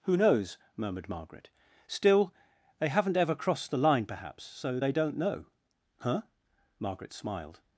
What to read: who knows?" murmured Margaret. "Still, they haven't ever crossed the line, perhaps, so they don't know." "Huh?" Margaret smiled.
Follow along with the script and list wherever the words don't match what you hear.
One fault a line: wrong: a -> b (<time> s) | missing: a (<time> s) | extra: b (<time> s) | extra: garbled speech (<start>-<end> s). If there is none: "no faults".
no faults